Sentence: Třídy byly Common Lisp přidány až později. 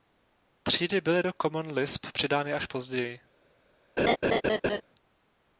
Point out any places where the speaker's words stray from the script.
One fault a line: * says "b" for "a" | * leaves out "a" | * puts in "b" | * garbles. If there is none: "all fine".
* puts in "do"